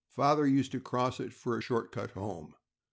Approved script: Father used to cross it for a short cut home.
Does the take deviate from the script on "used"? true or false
false